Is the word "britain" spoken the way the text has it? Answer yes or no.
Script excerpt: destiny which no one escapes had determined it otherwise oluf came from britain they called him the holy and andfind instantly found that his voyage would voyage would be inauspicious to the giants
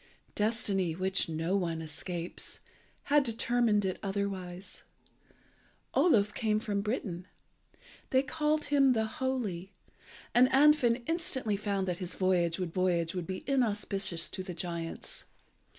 yes